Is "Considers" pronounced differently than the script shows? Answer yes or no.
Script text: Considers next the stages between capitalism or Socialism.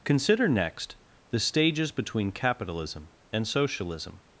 yes